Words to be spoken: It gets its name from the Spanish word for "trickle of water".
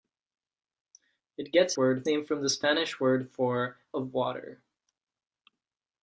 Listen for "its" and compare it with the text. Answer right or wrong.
wrong